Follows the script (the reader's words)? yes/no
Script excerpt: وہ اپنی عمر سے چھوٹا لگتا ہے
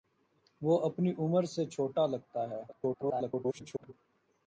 no